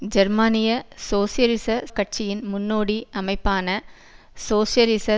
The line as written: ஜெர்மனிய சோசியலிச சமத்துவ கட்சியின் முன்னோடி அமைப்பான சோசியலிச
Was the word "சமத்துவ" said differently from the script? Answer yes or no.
yes